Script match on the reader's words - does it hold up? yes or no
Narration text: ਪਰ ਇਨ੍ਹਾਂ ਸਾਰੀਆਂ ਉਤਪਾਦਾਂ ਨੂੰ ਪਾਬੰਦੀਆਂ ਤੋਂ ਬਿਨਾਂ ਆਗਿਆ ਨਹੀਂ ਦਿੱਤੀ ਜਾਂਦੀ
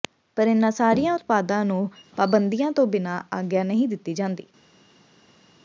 yes